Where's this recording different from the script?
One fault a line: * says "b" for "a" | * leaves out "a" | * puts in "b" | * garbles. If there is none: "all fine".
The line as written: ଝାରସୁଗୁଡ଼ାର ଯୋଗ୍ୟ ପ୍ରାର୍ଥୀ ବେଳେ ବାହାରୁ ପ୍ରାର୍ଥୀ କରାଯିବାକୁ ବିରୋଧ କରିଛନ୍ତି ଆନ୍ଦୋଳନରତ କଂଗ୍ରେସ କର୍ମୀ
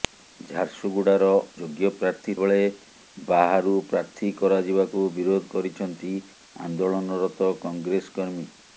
all fine